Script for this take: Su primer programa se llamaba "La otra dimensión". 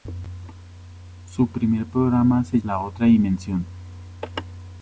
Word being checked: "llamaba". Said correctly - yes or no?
no